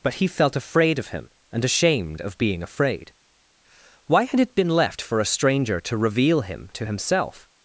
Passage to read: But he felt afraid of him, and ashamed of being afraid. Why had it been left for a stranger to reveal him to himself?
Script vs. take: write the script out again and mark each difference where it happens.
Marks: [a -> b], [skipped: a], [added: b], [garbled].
But he felt afraid of him, and ashamed of being afraid. Why had it been left for a stranger to reveal him to himself?